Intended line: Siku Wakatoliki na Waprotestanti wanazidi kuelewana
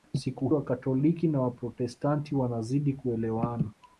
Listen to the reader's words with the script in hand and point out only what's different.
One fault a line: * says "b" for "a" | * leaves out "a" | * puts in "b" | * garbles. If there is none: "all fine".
all fine